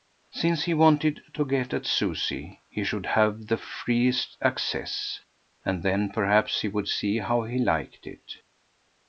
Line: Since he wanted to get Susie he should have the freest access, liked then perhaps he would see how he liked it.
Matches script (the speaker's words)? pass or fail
fail